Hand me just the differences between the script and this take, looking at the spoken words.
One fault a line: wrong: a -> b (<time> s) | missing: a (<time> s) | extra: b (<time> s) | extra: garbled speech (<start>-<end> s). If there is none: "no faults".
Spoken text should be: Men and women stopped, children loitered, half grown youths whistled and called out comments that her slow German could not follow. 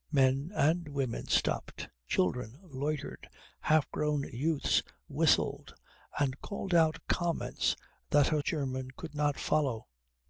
missing: slow (8.4 s)